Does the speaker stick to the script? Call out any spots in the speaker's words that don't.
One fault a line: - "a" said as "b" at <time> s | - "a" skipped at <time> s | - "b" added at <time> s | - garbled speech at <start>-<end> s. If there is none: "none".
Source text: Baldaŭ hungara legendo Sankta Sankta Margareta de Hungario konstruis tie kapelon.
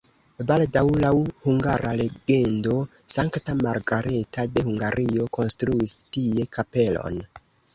- "laŭ" added at 1.0 s
- "Sankta" skipped at 3.5 s